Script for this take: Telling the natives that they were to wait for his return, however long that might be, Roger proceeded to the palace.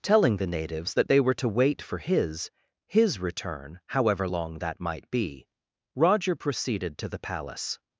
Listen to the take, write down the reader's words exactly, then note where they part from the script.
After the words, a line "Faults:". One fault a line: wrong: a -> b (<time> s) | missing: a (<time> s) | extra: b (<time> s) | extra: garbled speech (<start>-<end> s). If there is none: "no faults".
Telling the natives that they were to wait for his his return, however long that might be, Roger proceeded to the palace.
Faults:
extra: his (2.9 s)